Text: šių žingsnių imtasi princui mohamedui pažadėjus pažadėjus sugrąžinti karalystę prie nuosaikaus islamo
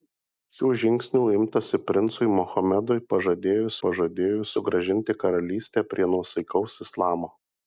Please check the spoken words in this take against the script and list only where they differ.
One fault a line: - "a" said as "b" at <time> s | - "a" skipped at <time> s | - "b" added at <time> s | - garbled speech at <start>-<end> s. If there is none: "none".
none